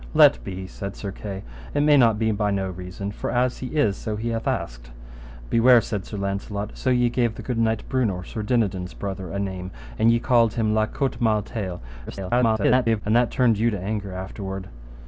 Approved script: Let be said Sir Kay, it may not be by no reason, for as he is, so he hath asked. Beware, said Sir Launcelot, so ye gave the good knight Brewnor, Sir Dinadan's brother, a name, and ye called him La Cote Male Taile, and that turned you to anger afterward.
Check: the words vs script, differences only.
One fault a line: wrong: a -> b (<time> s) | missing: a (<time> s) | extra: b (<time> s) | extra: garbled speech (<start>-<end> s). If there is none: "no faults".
extra: garbled speech (12.1-13.0 s)